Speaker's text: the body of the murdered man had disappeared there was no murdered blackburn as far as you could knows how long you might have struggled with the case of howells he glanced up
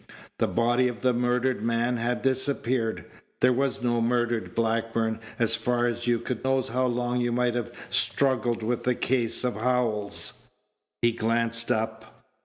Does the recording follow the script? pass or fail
pass